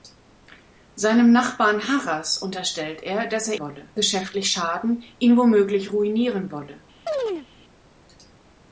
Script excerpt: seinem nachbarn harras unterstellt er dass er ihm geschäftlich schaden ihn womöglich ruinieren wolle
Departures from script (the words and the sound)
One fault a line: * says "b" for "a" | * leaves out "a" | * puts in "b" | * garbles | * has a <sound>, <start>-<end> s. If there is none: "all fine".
* says "wolle" for "ihm"
* has a chirp, 7.1-7.5 s